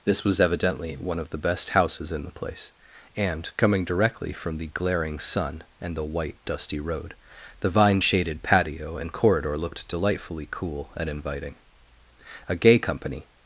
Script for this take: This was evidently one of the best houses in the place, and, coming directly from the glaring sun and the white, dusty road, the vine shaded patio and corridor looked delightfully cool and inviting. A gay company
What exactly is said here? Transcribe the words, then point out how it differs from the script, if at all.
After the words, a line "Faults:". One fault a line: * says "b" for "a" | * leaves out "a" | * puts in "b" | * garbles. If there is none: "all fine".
This was evidently one of the best houses in the place, and, coming directly from the glaring sun and the white, dusty road, the vine shaded patio and corridor looked delightfully cool and inviting. A gay company
Faults:
all fine